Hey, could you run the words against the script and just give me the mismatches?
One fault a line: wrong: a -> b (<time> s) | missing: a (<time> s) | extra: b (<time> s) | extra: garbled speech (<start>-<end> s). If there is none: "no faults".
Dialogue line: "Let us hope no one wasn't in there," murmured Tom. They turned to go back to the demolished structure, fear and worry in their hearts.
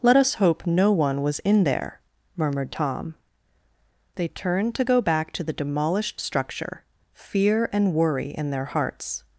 wrong: wasn't -> was (1.2 s)